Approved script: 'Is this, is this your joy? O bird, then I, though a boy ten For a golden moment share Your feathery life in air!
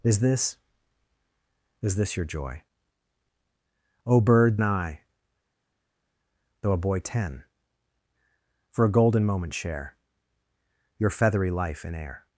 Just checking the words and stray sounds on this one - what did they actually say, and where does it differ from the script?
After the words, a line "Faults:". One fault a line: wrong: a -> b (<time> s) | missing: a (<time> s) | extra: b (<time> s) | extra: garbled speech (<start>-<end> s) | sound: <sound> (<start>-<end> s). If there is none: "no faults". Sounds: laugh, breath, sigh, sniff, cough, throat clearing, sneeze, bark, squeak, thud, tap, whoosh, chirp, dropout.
'Is this, is this your joy? O bird, I, though a boy ten For a golden moment share Your feathery life in air!
Faults:
missing: then (4.6 s)